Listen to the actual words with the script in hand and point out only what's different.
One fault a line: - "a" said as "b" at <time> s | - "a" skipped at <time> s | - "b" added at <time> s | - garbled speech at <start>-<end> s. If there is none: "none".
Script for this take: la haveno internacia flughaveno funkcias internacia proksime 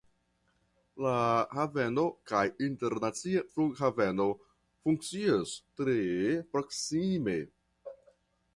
- "kaj" added at 2.3 s
- "internacia" said as "tre" at 5.8 s